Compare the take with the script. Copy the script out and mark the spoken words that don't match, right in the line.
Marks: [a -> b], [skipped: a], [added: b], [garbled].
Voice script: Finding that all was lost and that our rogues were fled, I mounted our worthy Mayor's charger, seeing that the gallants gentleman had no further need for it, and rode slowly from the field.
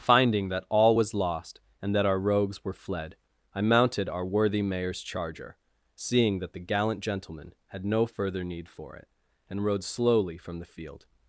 Finding that all was lost and that our rogues were fled, I mounted our worthy Mayor's charger, seeing that the [gallants -> gallant] gentleman had no further need for it, and rode slowly from the field.